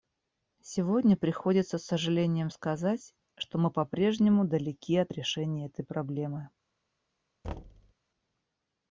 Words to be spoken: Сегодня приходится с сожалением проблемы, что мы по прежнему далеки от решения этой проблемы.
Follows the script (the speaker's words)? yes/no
no